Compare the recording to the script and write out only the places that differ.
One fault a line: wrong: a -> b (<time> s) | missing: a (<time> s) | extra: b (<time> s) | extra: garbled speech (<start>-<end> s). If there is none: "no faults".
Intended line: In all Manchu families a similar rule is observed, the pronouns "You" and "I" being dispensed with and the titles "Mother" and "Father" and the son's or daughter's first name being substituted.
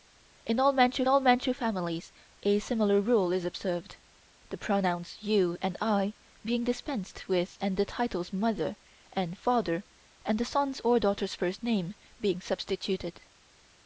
extra: all Manchu (1.1 s)